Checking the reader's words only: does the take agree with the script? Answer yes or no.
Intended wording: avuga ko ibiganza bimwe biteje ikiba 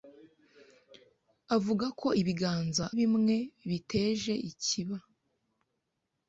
yes